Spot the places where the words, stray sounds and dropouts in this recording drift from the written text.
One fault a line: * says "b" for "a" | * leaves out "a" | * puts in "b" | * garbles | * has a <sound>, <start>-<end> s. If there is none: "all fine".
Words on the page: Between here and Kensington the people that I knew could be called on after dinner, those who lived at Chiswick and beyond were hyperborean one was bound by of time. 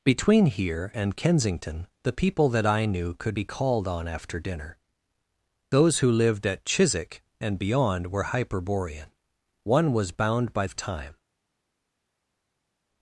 all fine